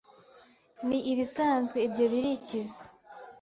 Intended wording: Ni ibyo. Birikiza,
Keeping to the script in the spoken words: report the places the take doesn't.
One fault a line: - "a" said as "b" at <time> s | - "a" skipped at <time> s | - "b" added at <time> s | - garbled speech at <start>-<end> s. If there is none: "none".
- "ibisanzwe" added at 1.1 s